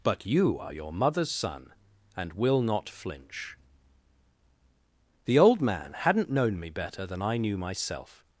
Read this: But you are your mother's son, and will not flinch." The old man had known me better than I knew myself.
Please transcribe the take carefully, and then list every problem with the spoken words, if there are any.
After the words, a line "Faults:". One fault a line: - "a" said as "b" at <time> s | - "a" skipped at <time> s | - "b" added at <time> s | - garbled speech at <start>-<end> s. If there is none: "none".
But you are your mother's son, and will not flinch." The old man hadn't known me better than I knew myself.
Faults:
- "had" said as "hadn't" at 5.9 s